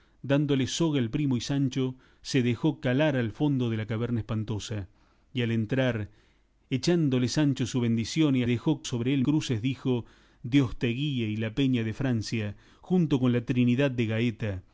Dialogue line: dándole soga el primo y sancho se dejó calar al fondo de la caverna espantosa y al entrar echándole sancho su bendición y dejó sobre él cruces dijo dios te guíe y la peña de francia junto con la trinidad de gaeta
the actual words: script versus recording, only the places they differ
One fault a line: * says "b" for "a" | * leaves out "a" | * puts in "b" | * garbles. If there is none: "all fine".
all fine